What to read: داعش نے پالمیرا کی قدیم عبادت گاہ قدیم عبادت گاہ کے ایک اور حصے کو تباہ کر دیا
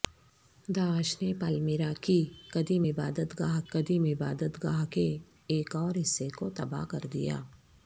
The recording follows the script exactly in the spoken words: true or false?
true